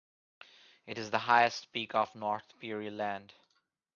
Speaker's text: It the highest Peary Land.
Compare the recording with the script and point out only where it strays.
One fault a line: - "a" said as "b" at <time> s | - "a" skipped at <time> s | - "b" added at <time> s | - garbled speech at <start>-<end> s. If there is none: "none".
- "is" added at 1.0 s
- "peak of North" added at 1.7 s